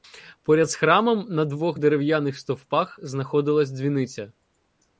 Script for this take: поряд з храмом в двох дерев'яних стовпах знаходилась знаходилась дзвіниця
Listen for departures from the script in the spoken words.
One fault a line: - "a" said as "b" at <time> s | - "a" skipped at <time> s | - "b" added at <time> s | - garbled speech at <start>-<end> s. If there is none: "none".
- "в" said as "на" at 1.3 s
- "знаходилась" skipped at 3.7 s